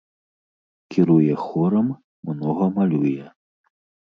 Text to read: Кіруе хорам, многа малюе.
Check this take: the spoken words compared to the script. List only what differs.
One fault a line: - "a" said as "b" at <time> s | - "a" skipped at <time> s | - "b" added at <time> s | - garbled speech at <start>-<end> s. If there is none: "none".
none